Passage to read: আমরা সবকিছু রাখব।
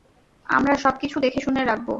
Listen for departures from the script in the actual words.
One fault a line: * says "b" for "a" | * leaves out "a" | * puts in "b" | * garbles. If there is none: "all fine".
* puts in "দেখেশুনে"